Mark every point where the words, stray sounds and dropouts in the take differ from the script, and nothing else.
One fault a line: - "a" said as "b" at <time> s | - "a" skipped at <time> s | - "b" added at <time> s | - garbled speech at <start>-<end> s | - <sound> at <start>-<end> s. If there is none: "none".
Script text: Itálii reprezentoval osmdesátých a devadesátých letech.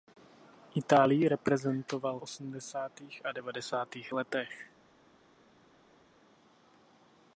none